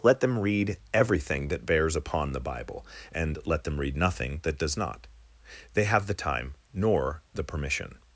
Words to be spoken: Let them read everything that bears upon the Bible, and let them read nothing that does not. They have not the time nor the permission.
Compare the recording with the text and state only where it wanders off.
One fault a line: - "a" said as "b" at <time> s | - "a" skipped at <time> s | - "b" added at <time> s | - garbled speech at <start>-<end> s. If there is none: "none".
- "not" skipped at 6.1 s